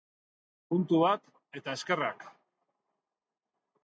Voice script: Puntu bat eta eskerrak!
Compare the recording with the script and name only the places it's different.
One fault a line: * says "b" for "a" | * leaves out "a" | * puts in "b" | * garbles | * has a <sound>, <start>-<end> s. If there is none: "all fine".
all fine